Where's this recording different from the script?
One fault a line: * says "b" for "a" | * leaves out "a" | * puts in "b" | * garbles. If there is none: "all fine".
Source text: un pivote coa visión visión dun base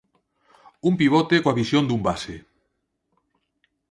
* leaves out "visión"